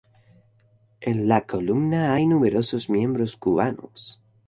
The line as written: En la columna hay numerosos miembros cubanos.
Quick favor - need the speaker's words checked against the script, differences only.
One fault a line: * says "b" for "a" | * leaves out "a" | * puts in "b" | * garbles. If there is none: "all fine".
all fine